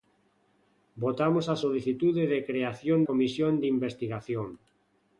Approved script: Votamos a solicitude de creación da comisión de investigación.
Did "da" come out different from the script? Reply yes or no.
yes